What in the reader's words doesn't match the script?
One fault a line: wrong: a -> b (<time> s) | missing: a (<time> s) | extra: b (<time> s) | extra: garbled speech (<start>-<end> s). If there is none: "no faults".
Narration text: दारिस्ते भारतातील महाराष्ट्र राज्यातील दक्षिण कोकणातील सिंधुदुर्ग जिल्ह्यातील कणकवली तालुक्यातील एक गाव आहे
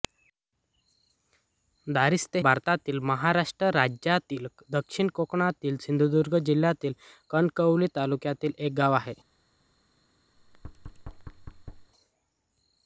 no faults